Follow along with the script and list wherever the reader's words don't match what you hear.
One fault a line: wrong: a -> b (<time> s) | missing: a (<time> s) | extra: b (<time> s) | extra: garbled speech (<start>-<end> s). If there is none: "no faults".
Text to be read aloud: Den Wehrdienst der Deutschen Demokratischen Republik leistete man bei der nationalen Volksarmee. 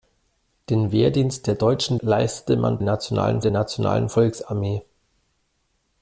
missing: Demokratischen Republik (2.0 s)
wrong: bei -> nationalen (2.8 s)